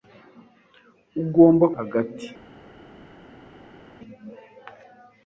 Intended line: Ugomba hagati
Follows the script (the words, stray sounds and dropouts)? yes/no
yes